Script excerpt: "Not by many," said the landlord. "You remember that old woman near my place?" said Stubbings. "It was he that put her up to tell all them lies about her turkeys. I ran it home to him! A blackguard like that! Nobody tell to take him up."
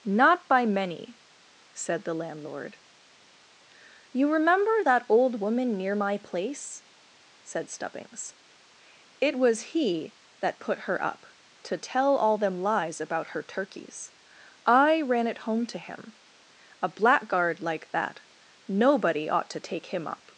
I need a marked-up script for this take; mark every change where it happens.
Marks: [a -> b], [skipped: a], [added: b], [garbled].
"Not by many," said the landlord. "You remember that old woman near my place?" said Stubbings. "It was he that put her up to tell all them lies about her turkeys. I ran it home to him! A blackguard like that! Nobody [tell -> ought] to take him up."